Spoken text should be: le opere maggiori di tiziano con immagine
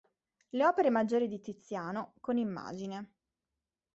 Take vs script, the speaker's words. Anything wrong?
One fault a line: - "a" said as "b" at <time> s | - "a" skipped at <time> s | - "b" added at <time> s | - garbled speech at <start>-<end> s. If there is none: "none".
none